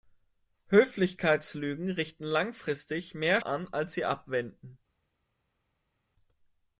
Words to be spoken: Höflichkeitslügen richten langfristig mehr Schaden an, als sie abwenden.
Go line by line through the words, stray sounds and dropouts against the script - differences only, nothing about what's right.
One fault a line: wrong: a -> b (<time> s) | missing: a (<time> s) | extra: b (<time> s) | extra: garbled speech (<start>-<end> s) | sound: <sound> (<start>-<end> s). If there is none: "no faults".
missing: Schaden (3.4 s)